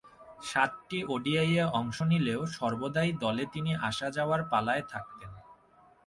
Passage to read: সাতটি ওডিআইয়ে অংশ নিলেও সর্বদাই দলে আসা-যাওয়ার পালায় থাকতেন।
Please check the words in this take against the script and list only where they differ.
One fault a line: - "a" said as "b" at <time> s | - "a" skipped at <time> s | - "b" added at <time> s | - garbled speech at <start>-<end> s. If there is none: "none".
- "তিনি" added at 3.5 s